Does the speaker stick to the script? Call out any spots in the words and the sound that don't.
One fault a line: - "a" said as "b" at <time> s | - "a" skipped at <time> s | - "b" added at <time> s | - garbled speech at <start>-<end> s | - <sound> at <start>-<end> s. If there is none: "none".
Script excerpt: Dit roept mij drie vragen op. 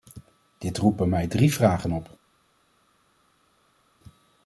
- "bij" added at 1.0 s